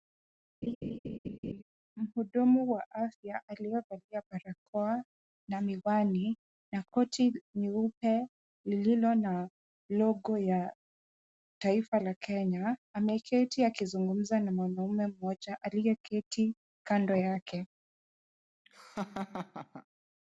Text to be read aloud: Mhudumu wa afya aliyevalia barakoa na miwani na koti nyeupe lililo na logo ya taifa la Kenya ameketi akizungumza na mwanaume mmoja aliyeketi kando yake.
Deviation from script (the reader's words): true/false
false